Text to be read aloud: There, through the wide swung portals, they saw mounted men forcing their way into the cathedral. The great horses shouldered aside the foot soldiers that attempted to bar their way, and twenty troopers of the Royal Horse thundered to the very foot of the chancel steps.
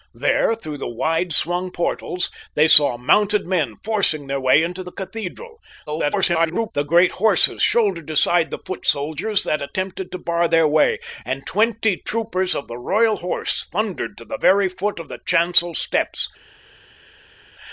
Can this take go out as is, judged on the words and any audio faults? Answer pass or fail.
fail